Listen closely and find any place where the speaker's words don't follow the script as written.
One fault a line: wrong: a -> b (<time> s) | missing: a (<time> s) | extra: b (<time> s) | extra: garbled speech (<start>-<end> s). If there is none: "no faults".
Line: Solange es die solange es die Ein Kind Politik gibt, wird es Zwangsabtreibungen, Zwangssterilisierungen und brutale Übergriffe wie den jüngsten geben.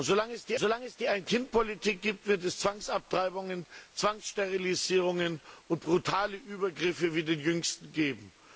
no faults